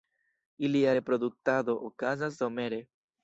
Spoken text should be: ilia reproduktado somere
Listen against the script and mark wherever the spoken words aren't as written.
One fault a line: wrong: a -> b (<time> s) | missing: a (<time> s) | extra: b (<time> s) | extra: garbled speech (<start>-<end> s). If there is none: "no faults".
extra: okazas (1.9 s)